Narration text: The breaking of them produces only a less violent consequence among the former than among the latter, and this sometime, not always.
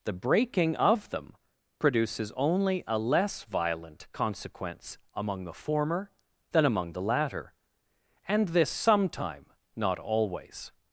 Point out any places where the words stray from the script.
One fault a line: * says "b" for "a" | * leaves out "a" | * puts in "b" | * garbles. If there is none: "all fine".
all fine